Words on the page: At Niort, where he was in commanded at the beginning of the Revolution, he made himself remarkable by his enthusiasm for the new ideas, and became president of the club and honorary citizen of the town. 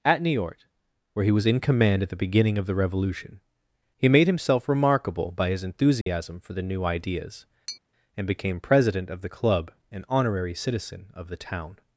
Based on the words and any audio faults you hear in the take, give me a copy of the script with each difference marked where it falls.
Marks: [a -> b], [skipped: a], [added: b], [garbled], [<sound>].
At Niort, where he was in [commanded -> command] at the beginning of the Revolution, he made himself remarkable by his enthusiasm [dropout] for the new ideas, [tap] and became president of the club and honorary citizen of the town.